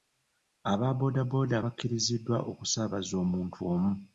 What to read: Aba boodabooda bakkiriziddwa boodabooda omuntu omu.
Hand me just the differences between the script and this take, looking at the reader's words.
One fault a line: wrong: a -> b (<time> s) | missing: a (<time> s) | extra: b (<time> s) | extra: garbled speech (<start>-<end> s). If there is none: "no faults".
wrong: boodabooda -> okusaabaza (2.5 s)